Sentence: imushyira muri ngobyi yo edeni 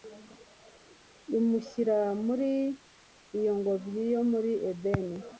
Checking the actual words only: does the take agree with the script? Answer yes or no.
no